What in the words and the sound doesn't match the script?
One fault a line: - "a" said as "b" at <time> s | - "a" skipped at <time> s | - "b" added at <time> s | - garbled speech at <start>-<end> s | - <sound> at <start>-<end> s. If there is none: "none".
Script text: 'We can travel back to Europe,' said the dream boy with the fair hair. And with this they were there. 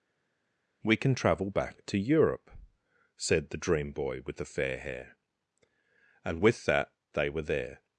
- "this" said as "that" at 6.7 s